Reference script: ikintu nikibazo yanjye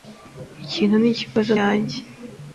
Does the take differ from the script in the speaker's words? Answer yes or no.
no